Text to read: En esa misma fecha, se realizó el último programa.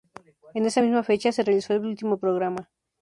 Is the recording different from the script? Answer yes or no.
no